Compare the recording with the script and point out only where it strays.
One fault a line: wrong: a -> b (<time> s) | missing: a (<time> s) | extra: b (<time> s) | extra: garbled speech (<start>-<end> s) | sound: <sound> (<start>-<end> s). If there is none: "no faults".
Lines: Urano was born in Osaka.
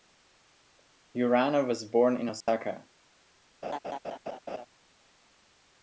sound: dropout (2.4-2.5 s)
sound: laugh (3.6-4.7 s)